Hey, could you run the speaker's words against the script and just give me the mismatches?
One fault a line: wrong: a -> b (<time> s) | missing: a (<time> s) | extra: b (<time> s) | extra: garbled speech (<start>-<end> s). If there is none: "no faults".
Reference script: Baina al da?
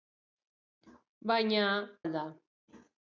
no faults